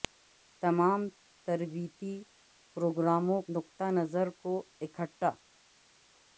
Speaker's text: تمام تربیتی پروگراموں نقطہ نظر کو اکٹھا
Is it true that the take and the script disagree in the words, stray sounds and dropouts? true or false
false